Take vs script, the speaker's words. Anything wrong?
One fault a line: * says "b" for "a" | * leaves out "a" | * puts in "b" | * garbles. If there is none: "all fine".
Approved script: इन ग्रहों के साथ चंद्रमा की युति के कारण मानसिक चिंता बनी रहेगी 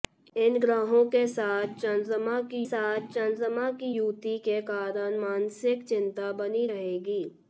* puts in "साथ चंद्रमा की"